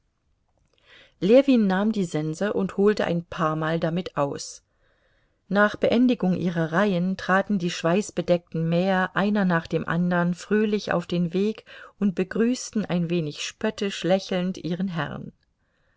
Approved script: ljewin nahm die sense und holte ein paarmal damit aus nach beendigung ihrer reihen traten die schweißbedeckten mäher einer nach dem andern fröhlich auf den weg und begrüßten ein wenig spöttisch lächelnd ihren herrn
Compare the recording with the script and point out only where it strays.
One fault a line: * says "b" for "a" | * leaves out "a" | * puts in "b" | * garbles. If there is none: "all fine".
all fine